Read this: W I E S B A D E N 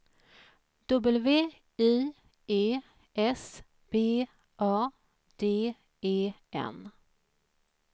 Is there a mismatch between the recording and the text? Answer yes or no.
no